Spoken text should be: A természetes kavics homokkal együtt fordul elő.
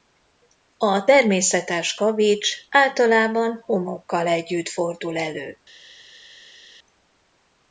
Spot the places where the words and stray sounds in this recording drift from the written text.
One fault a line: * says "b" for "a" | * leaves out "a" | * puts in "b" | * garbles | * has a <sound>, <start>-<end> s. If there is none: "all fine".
* puts in "általában"